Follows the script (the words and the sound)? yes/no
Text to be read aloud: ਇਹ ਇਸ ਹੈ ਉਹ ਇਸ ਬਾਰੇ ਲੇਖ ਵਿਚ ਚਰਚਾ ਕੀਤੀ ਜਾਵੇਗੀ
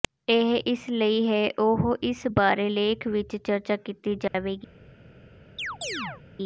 no